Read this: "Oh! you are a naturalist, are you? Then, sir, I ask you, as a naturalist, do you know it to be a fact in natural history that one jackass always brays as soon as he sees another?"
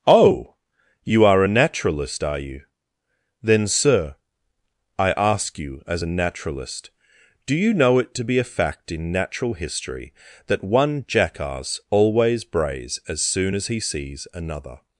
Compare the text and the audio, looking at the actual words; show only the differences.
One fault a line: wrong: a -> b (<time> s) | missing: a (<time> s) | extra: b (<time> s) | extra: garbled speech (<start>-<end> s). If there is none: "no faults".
no faults